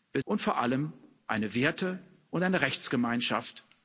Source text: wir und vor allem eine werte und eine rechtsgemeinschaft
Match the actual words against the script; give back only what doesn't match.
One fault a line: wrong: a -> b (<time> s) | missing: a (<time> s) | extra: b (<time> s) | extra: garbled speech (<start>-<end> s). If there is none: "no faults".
no faults